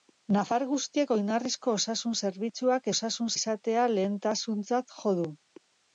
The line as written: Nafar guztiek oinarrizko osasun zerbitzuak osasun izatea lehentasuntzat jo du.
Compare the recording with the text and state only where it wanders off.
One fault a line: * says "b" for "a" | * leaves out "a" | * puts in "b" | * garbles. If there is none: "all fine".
all fine